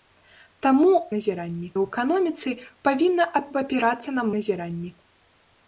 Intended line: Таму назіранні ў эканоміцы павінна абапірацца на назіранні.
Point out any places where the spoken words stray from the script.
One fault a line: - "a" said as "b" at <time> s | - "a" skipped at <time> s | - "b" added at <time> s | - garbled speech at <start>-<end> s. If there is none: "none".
none